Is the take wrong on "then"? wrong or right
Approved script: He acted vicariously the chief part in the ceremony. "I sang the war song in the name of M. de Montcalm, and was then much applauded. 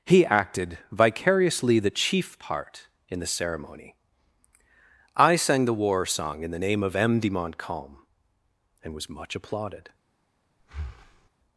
wrong